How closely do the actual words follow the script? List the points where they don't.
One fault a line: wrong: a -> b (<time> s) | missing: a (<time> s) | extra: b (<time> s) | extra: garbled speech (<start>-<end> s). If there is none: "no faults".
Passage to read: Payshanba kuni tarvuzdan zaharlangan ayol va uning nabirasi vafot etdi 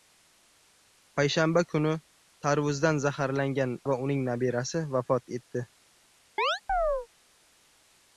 missing: ayol (3.8 s)